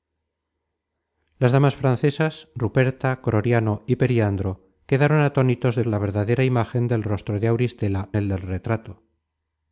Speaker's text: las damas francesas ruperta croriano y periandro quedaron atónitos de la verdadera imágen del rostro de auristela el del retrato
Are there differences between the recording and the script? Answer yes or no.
no